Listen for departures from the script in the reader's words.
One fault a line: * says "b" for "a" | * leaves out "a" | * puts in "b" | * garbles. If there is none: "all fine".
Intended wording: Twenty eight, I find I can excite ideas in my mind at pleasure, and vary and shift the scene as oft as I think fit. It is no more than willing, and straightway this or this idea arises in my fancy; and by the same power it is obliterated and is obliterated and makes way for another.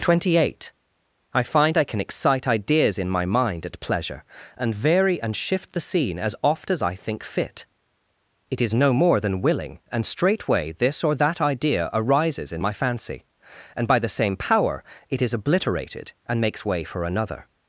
* says "that" for "this"
* leaves out "is obliterated and"